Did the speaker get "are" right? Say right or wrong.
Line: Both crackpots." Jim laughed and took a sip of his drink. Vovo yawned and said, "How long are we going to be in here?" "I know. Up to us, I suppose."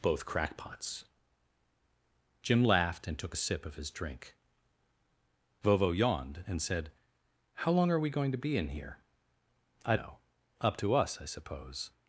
right